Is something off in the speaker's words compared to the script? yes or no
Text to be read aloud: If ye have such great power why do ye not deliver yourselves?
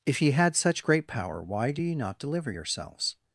yes